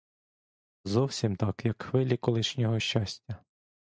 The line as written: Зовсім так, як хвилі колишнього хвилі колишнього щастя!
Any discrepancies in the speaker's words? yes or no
yes